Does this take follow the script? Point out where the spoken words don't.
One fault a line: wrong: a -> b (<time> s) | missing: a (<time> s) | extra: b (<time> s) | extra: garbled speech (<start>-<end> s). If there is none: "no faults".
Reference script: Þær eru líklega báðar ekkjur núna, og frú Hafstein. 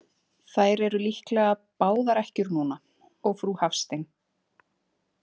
no faults